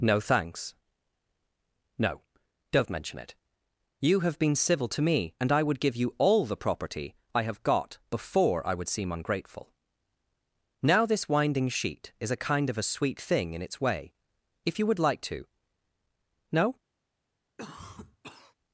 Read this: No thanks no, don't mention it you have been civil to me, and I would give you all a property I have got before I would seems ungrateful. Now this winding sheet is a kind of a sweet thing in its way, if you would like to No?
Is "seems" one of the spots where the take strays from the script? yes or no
yes